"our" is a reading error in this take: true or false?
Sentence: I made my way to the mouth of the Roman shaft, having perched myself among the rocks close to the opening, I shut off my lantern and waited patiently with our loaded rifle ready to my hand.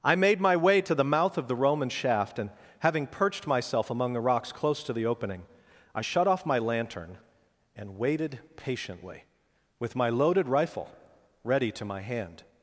true